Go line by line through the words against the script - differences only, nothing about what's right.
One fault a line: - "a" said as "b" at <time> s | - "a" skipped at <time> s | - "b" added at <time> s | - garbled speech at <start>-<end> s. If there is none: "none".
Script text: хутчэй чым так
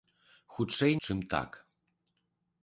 none